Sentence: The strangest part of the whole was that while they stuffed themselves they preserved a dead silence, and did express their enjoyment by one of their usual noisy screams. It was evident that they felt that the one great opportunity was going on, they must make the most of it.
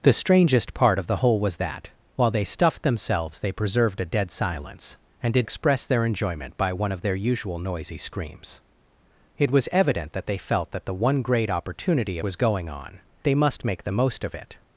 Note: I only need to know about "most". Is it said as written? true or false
true